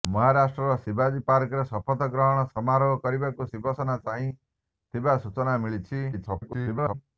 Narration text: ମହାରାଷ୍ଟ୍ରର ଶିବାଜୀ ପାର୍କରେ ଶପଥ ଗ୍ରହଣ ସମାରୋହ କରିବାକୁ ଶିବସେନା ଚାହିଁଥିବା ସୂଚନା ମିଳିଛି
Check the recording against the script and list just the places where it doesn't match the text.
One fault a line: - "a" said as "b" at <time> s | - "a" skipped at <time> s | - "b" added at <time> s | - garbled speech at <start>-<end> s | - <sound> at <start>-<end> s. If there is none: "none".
- garbled speech at 6.1-6.9 s